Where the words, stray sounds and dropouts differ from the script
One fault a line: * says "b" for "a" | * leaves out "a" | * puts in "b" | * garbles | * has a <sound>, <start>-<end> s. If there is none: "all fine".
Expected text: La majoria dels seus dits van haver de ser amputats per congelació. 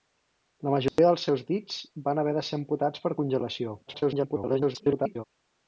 * has a dropout, 0.9-1.0 s
* garbles